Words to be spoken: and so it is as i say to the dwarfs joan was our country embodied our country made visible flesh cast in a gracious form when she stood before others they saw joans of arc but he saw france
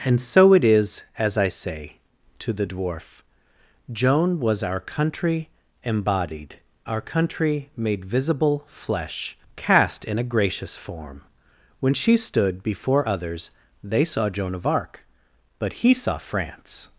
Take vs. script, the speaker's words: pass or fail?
fail